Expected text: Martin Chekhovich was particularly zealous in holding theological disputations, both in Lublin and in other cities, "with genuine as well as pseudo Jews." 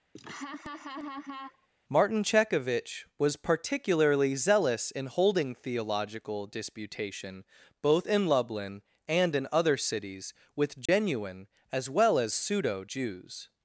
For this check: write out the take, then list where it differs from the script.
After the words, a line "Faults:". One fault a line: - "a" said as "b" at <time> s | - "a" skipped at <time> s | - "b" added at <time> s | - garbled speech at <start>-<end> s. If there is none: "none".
Martin Chekhovich was particularly zealous in holding theological disputation, both in Lublin and in other cities, "with genuine as well as pseudo Jews."
Faults:
- "disputations" said as "disputation" at 6.5 s